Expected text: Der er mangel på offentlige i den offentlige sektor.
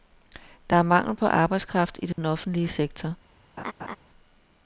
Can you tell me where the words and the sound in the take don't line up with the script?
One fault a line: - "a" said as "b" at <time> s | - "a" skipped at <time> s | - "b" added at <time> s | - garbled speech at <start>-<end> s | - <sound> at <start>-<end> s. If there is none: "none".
- "offentlige" said as "arbejdskraft" at 1.3 s
- dropout at 2.1-2.2 s
- laugh at 3.6-4.0 s